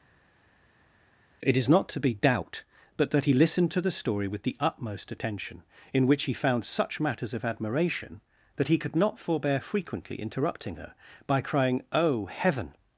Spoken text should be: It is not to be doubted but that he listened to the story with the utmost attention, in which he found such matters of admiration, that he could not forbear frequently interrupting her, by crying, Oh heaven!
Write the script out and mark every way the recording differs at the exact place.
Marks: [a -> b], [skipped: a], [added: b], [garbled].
It is not to be [doubted -> doubt] but that he listened to the story with the utmost attention, in which he found such matters of admiration, that he could not forbear frequently interrupting her, by crying, Oh heaven!